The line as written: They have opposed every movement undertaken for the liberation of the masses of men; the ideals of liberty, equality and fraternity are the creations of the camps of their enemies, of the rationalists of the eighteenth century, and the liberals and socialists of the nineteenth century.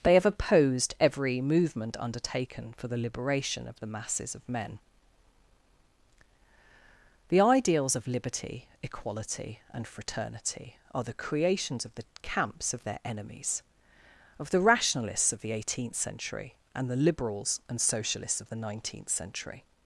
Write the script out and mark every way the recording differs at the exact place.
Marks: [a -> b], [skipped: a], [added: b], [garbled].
They have opposed every movement undertaken for the liberation of the masses of men; the ideals of liberty, equality and fraternity are the creations of the camps of their enemies, of the rationalists of the eighteenth century, and the liberals and socialists of the nineteenth century.